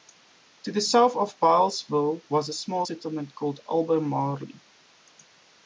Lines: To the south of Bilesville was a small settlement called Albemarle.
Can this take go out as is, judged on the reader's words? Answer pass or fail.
pass